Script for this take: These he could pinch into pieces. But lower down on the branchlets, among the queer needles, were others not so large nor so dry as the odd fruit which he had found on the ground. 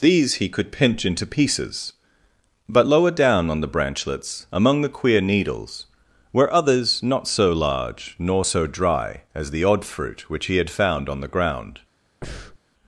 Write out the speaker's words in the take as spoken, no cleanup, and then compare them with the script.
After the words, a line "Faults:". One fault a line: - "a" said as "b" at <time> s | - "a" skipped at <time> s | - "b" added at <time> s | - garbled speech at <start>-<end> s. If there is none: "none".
These he could pinch into pieces. But lower down on the branchlets, among the queer needles, were others not so large nor so dry as the odd fruit which he had found on the ground.
Faults:
none